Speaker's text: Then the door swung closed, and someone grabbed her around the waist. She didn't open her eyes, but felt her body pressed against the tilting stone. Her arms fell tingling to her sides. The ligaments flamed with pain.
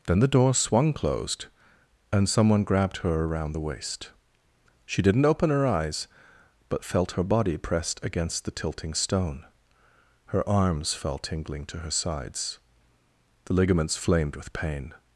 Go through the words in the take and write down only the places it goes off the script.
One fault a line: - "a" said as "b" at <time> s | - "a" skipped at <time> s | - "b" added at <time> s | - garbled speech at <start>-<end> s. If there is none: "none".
none